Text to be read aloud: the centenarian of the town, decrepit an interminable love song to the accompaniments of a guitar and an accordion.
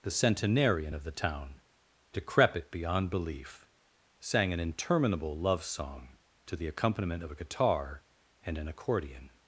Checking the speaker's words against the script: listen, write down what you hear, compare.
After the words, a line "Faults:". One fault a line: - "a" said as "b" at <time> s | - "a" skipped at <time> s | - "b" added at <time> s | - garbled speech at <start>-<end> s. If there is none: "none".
the centenarian of the town, decrepit beyond belief, sang an interminable love song to the accompaniment of a guitar and an accordion.
Faults:
- "beyond belief sang" added at 2.7 s
- "accompaniments" said as "accompaniment" at 6.7 s